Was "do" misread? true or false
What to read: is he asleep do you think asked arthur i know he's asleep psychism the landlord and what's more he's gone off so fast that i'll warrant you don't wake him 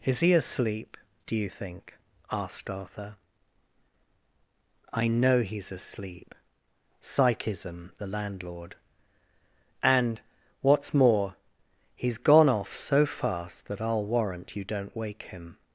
false